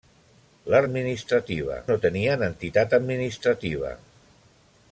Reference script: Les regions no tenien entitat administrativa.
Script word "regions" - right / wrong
wrong